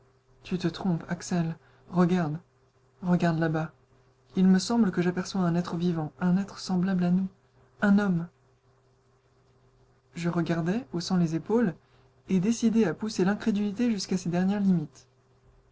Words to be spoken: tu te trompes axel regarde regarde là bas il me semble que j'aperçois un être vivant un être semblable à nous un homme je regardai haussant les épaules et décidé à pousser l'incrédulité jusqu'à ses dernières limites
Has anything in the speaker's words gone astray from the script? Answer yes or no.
no